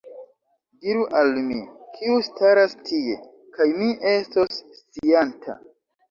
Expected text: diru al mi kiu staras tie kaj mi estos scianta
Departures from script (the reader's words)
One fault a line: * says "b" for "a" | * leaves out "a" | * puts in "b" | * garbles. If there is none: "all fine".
all fine